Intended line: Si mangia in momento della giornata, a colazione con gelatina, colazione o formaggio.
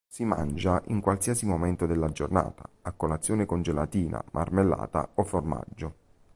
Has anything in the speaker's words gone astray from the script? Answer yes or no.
yes